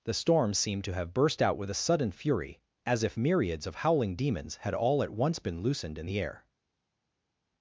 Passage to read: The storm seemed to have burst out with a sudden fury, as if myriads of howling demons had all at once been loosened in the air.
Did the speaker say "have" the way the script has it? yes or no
yes